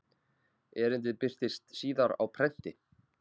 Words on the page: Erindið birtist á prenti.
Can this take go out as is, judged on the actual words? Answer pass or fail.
fail